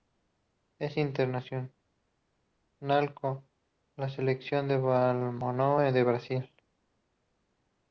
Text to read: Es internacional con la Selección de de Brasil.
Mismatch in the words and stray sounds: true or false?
true